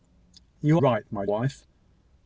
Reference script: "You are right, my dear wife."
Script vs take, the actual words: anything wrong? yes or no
yes